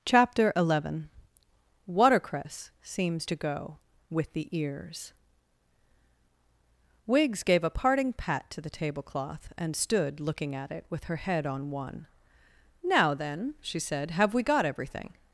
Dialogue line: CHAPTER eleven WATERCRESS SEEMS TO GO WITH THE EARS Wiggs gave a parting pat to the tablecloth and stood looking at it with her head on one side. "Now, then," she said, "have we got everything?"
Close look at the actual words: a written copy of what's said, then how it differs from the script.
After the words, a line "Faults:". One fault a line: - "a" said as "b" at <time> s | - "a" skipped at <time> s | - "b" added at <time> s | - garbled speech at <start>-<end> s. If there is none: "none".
CHAPTER eleven WATERCRESS SEEMS TO GO WITH THE EARS Wiggs gave a parting pat to the tablecloth and stood looking at it with her head on one. "Now, then," she said, "have we got everything?"
Faults:
- "side" skipped at 12.1 s